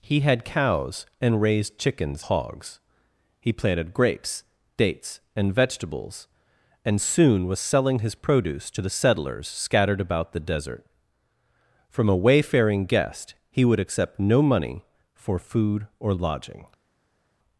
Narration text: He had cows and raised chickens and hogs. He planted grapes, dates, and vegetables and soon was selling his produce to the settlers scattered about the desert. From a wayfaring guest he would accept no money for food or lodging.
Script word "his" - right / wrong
right